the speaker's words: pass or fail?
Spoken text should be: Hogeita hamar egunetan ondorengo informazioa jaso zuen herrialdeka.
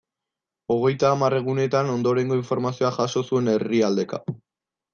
pass